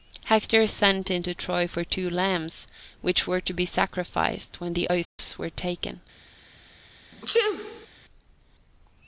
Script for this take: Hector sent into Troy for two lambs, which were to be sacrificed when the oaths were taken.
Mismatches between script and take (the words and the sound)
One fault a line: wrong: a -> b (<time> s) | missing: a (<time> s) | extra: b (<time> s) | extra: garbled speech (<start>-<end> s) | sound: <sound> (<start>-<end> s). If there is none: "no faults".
sound: dropout (5.0-5.2 s)
sound: sneeze (7.1-7.9 s)